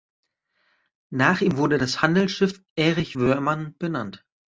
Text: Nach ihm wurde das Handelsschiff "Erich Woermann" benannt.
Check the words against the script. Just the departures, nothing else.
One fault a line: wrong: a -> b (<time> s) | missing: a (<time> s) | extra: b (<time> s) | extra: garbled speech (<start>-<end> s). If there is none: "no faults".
no faults